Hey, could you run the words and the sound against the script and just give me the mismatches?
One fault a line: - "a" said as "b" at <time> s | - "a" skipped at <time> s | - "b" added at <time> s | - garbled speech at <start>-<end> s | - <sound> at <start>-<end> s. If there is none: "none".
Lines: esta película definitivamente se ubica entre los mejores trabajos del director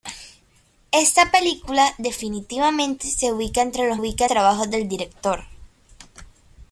- "mejores" said as "ubica" at 3.9 s